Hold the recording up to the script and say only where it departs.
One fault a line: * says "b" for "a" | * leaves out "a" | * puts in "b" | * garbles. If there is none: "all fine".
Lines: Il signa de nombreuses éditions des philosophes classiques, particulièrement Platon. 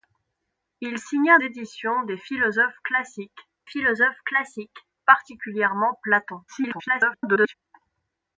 * says "éditions des philosophes classiques" for "de nombreuses éditions des"
* garbles